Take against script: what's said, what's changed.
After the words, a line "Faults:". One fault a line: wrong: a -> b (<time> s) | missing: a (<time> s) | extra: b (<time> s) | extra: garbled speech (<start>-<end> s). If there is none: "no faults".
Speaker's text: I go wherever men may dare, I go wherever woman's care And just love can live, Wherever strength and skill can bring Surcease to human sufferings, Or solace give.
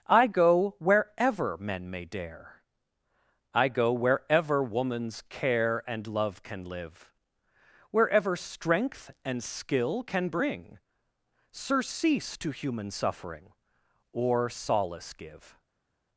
I go wherever men may dare, I go wherever woman's care And love can live, Wherever strength and skill can bring Surcease to human suffering, Or solace give.
Faults:
missing: just (6.1 s)
wrong: sufferings -> suffering (12.9 s)